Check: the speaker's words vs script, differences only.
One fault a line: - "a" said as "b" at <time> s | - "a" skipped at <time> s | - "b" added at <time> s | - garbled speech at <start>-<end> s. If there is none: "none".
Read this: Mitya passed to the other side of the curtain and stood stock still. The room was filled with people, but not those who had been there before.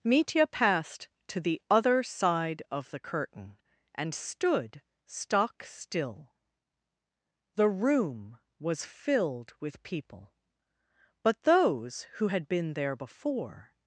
- "not" skipped at 11.4 s